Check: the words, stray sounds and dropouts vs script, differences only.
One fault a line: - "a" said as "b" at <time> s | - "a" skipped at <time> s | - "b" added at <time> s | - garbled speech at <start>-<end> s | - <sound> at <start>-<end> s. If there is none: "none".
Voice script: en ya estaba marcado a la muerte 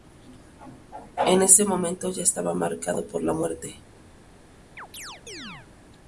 - "ese momento" added at 1.4 s
- "a" said as "por" at 3.0 s
- chirp at 4.8-5.7 s